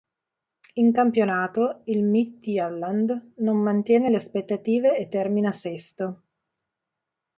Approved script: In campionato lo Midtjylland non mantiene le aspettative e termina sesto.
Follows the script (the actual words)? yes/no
no